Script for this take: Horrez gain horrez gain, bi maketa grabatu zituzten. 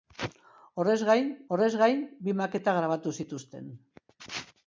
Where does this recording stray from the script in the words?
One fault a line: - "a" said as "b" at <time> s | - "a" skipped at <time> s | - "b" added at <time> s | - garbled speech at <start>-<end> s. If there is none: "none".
none